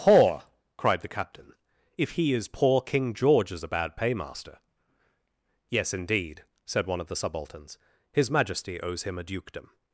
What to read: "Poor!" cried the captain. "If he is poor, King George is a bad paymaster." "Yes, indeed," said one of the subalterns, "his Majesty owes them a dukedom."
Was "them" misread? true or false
true